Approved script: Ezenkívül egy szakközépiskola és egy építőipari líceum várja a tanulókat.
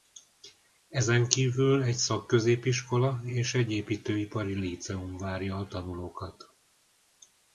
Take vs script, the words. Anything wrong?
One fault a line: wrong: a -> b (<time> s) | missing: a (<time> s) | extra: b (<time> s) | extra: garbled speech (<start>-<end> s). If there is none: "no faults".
no faults